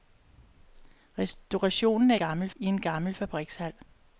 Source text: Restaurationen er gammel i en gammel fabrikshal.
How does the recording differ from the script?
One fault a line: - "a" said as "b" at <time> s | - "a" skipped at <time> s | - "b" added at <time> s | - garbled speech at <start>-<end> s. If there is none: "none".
none